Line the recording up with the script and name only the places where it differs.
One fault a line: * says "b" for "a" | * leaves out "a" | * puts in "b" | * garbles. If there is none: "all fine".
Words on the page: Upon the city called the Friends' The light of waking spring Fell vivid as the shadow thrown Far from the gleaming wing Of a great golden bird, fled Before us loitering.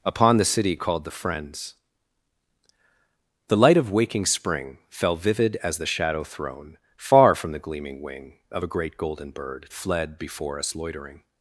all fine